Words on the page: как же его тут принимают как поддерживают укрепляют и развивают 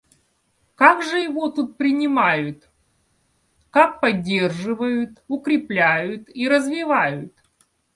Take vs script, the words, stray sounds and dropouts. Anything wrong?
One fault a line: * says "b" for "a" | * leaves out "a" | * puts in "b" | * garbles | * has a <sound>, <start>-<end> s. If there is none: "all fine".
all fine